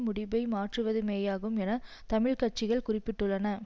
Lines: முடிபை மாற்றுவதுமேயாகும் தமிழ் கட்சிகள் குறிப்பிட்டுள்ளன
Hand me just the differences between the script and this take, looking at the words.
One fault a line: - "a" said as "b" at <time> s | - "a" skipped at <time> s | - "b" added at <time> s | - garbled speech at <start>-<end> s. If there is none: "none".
- "என" added at 1.6 s